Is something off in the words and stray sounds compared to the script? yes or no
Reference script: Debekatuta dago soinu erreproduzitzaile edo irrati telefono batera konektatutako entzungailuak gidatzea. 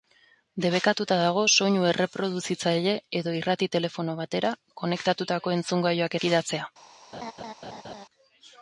yes